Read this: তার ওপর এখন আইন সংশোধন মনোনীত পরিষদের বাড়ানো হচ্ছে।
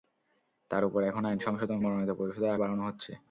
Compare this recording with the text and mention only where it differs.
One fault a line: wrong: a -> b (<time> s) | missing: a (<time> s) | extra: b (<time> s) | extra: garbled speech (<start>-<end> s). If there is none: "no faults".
no faults